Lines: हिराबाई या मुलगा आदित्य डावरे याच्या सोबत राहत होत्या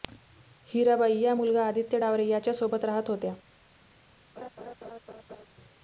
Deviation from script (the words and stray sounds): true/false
true